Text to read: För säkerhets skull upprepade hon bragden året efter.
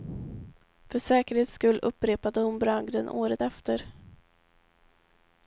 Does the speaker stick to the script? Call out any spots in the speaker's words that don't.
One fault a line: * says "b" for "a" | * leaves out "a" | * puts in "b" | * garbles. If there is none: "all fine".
all fine